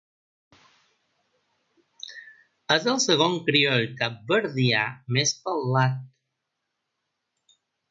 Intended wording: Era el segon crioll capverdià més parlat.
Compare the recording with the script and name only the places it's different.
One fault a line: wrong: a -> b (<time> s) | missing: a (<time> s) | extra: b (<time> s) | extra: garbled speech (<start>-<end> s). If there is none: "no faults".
wrong: Era -> És (2.8 s)